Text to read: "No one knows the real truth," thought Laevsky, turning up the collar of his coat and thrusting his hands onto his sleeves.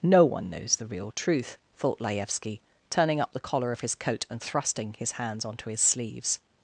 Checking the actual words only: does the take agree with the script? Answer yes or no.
yes